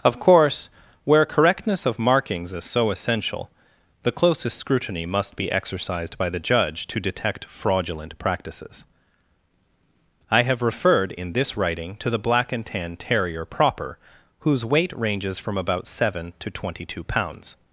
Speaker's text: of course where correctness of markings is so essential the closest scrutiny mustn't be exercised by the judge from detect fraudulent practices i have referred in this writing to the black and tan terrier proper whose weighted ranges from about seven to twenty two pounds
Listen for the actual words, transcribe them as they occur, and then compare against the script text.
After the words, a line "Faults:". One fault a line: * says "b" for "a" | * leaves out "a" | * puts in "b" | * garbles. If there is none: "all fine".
of course where correctness of markings is so essential the closest scrutiny must be exercised by the judge to detect fraudulent practices i have referred in this writing to the black and tan terrier proper whose weight ranges from about seven to twenty two pounds
Faults:
* says "must" for "mustn't"
* says "to" for "from"
* says "weight" for "weighted"